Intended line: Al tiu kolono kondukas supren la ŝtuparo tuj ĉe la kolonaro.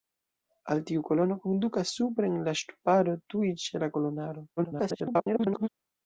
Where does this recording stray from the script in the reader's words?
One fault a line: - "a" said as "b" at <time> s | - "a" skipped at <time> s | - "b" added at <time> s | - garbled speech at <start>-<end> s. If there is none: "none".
- garbled speech at 4.6-5.7 s